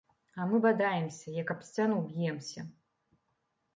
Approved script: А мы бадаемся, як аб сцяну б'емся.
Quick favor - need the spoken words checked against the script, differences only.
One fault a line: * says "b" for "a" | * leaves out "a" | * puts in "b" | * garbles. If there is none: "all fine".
all fine